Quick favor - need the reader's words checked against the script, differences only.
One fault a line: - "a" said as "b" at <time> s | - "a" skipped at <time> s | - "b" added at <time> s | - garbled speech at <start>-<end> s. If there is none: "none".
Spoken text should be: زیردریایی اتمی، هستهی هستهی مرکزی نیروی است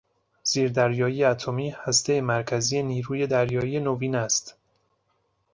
- "هستهی" skipped at 2.2 s
- "دریایی نوین" added at 3.2 s